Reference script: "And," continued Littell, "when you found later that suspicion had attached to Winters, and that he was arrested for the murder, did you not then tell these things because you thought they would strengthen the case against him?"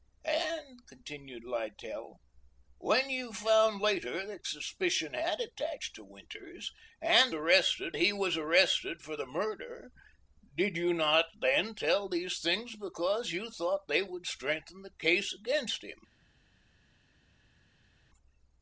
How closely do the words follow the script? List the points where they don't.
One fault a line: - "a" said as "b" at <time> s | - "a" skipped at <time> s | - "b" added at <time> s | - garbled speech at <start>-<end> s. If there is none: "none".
- "that" said as "arrested" at 7.3 s